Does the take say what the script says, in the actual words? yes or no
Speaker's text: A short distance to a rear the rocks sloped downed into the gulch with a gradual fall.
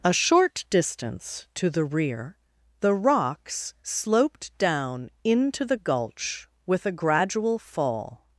no